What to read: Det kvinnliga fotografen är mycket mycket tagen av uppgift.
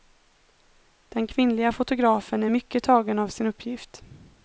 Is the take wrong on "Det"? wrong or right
wrong